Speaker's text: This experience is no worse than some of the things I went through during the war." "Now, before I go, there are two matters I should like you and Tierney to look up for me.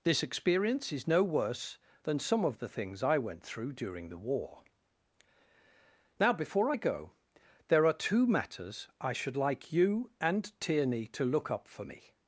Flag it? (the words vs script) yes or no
no